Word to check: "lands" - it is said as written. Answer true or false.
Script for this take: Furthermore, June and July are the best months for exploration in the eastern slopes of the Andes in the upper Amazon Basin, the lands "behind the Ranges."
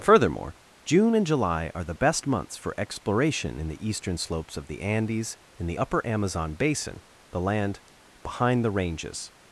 false